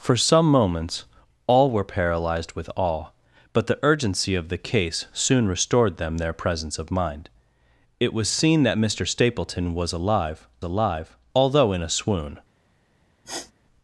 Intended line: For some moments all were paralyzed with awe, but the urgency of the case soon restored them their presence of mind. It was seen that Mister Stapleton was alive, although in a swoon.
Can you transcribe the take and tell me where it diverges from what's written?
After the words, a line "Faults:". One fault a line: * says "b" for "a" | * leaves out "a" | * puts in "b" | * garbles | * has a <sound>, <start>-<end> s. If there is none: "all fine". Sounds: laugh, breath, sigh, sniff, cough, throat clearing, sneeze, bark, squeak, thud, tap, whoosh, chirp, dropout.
For some moments all were paralyzed with awe, but the urgency of the case soon restored them their presence of mind. It was seen that Mister Stapleton was alive alive, although in a swoon.
Faults:
* puts in "alive"
* has a sniff, 13.2-13.5 s